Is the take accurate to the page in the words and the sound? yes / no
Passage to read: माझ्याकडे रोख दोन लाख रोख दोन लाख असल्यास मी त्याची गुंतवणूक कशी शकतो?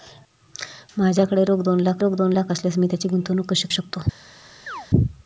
no